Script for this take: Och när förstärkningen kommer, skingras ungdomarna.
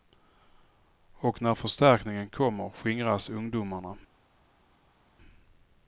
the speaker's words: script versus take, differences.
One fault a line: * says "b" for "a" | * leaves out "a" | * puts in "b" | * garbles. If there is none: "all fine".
all fine